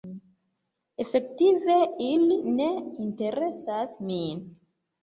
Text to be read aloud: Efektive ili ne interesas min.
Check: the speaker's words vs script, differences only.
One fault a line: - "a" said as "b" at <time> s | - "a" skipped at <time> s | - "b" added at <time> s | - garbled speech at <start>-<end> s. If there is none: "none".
none